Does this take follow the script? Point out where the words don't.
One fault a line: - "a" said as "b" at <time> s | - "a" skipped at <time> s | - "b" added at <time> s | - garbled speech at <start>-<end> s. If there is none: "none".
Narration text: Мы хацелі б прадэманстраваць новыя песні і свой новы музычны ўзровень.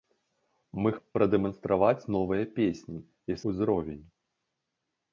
- "хацелі" skipped at 0.9 s
- "свой новы музычны" skipped at 3.4 s